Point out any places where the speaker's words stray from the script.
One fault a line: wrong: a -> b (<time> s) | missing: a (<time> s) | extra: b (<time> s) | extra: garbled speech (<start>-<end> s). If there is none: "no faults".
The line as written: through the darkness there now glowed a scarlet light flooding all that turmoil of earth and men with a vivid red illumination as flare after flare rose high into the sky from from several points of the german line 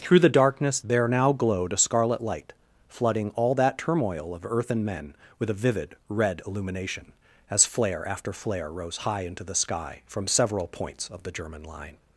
missing: from (10.3 s)